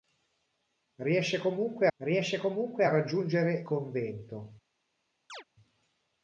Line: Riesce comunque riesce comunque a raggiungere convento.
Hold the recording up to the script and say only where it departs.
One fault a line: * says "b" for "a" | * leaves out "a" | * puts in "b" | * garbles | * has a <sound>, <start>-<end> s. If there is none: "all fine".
* has a chirp, 5.3-5.4 s